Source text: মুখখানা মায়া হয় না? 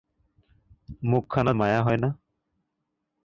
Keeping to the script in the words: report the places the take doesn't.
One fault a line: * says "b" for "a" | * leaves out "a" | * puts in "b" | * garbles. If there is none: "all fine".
all fine